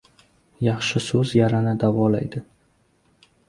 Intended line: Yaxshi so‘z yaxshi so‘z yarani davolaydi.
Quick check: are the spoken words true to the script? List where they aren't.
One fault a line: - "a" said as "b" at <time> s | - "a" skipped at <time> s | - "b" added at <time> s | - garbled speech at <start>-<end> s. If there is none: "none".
- "yaxshi so‘z" skipped at 1.4 s